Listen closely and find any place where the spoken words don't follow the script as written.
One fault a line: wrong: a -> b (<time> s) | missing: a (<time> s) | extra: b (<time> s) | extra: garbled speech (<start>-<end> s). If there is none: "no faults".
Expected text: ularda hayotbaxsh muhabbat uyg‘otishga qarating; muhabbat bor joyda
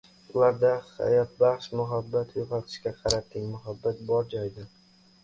no faults